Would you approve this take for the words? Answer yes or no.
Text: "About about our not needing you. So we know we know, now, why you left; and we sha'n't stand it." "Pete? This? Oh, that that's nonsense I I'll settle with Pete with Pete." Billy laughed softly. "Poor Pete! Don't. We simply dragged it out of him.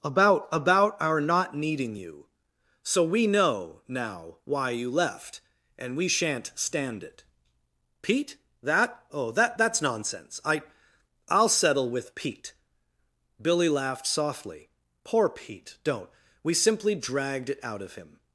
no